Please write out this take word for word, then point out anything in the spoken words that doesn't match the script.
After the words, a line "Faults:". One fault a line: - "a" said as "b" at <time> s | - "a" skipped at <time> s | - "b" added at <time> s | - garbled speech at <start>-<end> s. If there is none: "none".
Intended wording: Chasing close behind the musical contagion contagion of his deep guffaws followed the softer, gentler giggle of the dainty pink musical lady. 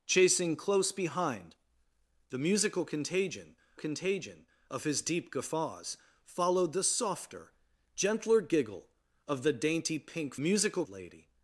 Chasing close behind the musical contagion contagion of his deep guffaws followed the softer, gentler giggle of the dainty pink musical lady.
Faults:
none